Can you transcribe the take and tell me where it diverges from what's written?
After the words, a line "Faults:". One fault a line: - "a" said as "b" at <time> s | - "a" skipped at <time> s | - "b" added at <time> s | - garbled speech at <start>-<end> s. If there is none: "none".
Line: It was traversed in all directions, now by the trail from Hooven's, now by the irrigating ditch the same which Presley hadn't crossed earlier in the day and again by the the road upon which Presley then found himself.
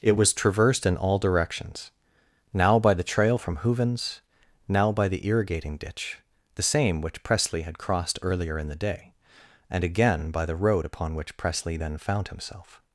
It was traversed in all directions, now by the trail from Hooven's, now by the irrigating ditch the same which Presley had crossed earlier in the day and again by the road upon which Presley then found himself.
Faults:
- "hadn't" said as "had" at 7.6 s
- "the" skipped at 10.6 s